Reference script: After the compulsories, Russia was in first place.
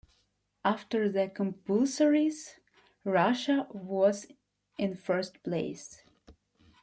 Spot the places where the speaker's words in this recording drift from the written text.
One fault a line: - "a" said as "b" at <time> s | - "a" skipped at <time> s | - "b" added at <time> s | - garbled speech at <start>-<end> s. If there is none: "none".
none